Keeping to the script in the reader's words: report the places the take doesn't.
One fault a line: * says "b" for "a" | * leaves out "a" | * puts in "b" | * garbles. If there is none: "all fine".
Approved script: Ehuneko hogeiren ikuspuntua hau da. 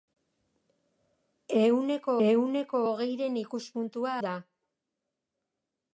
* puts in "ehuneko"
* leaves out "hau"